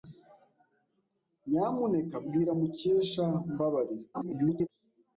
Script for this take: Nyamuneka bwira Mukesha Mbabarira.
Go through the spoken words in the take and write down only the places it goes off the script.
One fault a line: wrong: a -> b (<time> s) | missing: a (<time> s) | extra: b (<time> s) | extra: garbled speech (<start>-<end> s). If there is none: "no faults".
extra: garbled speech (4.1-4.7 s)